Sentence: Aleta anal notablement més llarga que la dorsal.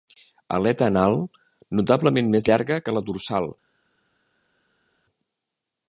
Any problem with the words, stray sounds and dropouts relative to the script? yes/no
no